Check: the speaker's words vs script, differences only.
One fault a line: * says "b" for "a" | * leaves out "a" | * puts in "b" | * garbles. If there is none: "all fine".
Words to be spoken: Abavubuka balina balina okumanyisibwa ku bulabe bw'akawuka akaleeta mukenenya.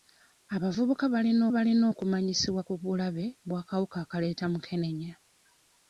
all fine